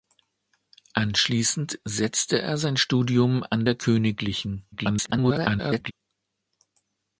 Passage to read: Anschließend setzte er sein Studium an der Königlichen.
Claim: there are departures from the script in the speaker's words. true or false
true